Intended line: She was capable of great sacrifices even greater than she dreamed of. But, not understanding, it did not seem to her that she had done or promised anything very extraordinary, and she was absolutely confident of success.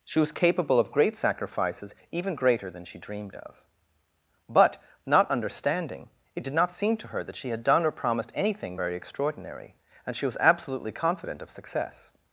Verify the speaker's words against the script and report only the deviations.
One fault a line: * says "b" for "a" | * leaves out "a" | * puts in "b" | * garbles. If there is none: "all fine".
all fine